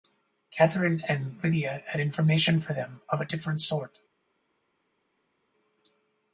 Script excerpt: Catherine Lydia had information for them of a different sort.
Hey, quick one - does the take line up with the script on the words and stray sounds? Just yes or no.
no